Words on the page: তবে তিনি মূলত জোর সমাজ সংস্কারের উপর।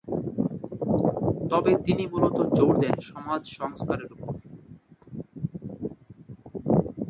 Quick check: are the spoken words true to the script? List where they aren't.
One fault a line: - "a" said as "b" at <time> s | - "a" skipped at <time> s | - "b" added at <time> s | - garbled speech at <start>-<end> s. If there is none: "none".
- "দেন" added at 2.8 s